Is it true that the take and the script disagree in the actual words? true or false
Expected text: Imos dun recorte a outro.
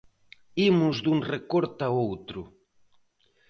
false